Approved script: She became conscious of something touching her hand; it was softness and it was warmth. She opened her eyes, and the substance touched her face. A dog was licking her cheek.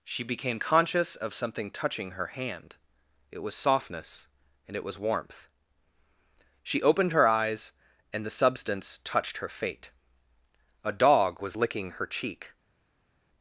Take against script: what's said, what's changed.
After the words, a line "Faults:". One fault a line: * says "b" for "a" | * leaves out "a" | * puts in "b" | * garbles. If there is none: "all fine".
She became conscious of something touching her hand; it was softness and it was warmth. She opened her eyes, and the substance touched her fate. A dog was licking her cheek.
Faults:
* says "fate" for "face"